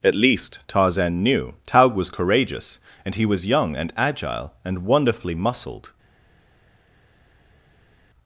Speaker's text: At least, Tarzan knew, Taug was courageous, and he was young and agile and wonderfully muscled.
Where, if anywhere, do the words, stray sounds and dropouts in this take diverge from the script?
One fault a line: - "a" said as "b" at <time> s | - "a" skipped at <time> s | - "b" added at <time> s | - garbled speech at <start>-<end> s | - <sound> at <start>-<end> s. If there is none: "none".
none